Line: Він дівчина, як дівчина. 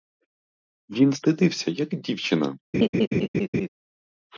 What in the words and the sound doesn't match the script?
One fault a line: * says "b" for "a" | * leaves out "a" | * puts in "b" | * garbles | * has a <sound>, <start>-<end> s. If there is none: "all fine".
* says "стидався" for "дівчина"
* has a laugh, 2.7-3.7 s